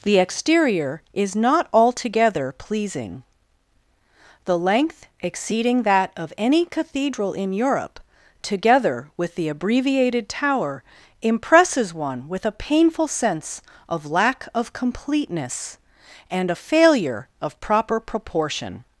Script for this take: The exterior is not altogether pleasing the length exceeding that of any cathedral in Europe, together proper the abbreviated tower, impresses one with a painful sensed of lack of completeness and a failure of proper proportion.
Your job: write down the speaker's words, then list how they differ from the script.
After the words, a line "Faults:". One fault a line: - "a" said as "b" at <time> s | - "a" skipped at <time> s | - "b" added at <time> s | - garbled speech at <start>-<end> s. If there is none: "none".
The exterior is not altogether pleasing the length exceeding that of any cathedral in Europe, together with the abbreviated tower, impresses one with a painful sense of lack of completeness and a failure of proper proportion.
Faults:
- "proper" said as "with" at 9.2 s
- "sensed" said as "sense" at 13.1 s